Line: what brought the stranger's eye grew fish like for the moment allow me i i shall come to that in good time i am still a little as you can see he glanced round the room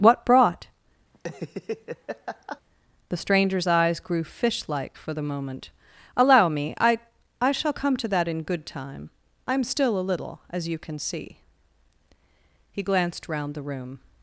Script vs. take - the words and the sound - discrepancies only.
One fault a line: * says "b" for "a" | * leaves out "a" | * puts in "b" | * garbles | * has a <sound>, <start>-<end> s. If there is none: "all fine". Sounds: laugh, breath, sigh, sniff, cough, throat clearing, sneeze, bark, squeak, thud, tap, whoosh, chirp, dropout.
* has a laugh, 1.1-2.6 s
* says "eyes" for "eye"